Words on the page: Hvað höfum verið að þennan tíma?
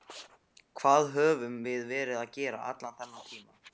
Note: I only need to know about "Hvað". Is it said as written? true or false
true